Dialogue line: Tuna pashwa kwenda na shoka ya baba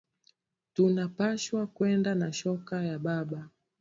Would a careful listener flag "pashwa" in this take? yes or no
no